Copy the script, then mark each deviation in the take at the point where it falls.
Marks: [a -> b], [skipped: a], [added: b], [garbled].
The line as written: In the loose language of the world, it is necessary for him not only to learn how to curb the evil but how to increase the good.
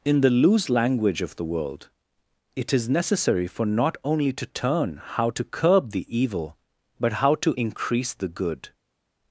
In the loose language of the world, it is necessary for [skipped: him] not only to [learn -> turn] how to curb the evil but how to increase the good.